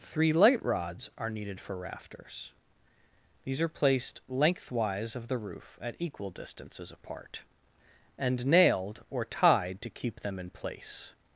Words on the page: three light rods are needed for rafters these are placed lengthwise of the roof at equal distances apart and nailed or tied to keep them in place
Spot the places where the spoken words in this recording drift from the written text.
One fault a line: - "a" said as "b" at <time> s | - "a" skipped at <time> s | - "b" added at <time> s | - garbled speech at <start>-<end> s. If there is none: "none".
none